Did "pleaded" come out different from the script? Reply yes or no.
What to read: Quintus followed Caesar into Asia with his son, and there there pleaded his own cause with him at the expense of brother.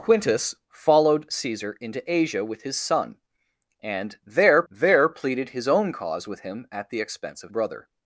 no